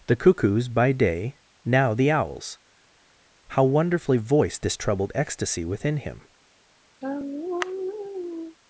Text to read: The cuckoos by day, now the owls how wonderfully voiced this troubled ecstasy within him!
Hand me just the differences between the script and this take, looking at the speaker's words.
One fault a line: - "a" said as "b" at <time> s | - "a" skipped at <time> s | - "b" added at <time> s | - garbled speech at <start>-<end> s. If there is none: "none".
none